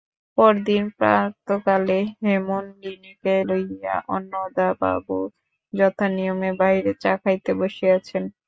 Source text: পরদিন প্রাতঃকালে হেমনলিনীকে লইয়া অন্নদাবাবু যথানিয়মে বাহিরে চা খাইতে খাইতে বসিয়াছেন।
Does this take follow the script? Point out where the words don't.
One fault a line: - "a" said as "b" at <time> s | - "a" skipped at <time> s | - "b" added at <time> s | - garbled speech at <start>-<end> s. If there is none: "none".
- "খাইতে" skipped at 7.5 s